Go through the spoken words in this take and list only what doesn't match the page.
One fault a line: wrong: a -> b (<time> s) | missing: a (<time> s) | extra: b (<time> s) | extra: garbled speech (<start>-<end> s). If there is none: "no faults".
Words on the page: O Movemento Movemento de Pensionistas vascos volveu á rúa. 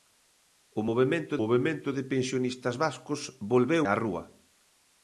no faults